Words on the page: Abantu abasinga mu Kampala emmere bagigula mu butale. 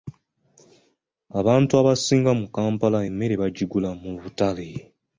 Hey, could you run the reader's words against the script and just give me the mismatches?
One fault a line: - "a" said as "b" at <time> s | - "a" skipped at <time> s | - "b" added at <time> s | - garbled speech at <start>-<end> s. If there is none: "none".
none